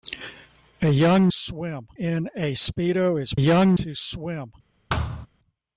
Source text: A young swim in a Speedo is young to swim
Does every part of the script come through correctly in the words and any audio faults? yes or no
no